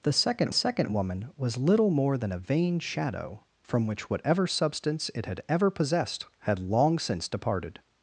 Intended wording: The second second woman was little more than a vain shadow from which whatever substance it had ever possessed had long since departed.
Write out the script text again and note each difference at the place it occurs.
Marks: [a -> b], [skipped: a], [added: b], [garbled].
The second second woman was little more than a vain shadow from which whatever substance it had ever possessed had long since departed.